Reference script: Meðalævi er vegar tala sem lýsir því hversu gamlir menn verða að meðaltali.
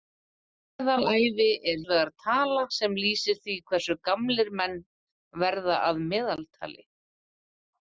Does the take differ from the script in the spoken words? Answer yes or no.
no